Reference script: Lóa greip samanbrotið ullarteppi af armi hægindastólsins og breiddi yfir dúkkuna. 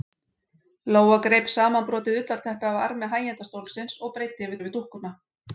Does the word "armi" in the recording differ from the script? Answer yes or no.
no